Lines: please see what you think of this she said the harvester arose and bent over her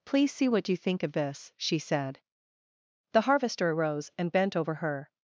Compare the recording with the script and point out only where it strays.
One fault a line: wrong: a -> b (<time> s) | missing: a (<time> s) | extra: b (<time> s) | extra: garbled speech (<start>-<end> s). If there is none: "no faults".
no faults